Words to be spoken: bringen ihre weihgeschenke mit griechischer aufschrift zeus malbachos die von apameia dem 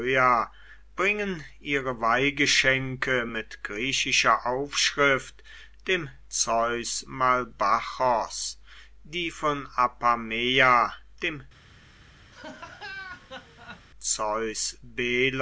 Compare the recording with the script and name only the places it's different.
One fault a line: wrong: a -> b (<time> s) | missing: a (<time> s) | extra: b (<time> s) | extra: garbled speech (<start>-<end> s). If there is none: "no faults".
extra: dem (5.9 s)